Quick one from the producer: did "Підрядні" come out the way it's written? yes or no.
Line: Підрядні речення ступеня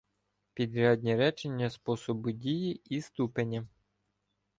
yes